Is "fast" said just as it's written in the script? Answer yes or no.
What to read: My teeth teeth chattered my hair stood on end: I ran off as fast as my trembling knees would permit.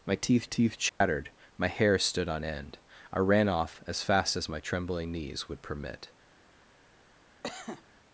yes